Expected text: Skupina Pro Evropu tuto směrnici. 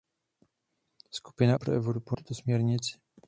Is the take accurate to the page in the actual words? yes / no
yes